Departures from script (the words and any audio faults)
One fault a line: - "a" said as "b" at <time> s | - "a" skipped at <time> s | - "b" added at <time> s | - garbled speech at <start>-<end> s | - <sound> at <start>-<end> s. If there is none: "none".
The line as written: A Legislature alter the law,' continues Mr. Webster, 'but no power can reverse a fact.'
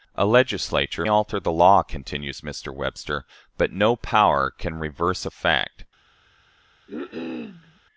- cough at 6.9-7.8 s